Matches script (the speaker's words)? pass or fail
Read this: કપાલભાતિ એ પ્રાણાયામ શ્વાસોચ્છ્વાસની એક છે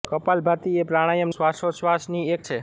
pass